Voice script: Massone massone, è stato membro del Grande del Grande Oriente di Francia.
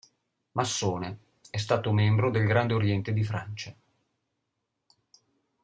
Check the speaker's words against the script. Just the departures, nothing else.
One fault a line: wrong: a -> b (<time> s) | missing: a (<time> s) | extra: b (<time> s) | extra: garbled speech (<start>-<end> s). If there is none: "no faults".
missing: massone (1.2 s)
missing: del Grande (2.7 s)